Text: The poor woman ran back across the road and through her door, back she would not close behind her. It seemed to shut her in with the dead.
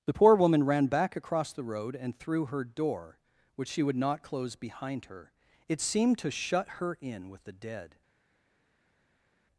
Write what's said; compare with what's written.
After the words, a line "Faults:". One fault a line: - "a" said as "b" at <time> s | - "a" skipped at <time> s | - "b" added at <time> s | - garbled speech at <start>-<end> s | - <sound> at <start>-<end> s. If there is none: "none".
The poor woman ran back across the road and through her door, which she would not close behind her. It seemed to shut her in with the dead.
Faults:
- "back" said as "which" at 3.6 s